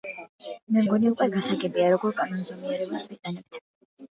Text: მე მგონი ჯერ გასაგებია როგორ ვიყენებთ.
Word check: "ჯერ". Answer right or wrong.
wrong